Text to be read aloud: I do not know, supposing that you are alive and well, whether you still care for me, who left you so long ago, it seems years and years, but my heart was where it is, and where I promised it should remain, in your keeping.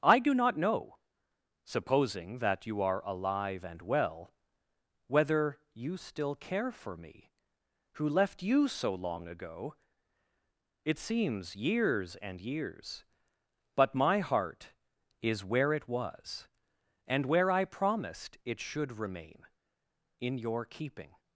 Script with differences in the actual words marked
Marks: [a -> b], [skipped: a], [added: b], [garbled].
I do not know, supposing that you are alive and well, whether you still care for me, who left you so long ago, it seems years and years, but my heart [was -> is] where it [is, -> was] and where I promised it should remain, in your keeping.